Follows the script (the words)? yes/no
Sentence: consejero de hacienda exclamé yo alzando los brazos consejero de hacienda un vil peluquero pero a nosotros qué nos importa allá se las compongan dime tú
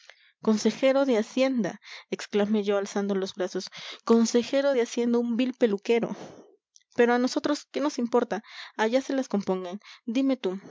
yes